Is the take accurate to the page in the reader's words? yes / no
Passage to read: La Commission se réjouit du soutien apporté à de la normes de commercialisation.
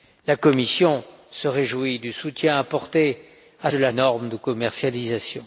yes